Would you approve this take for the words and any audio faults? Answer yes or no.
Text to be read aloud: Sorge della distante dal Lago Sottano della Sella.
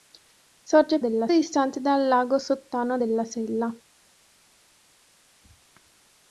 yes